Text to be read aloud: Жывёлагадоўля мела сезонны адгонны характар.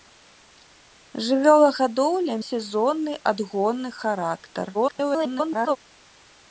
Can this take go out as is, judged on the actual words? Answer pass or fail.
fail